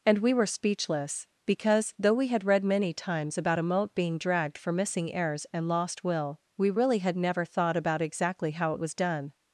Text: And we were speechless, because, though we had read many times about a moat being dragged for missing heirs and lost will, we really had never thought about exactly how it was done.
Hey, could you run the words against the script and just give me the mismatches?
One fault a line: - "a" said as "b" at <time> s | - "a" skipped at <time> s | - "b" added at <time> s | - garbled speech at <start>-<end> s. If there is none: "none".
none